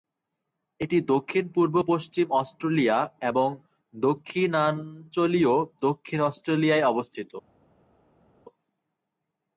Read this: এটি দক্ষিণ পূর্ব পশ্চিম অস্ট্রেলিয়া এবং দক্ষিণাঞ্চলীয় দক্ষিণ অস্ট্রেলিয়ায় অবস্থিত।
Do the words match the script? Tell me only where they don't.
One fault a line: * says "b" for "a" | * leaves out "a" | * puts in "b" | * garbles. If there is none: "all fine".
all fine